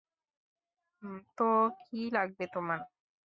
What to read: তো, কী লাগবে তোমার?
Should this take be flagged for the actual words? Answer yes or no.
no